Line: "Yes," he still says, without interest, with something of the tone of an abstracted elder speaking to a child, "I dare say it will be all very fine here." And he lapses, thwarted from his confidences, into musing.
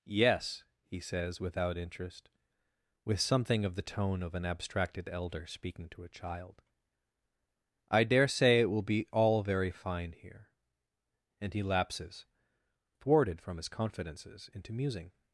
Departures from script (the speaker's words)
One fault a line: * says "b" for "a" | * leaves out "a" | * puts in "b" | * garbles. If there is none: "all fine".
* leaves out "still"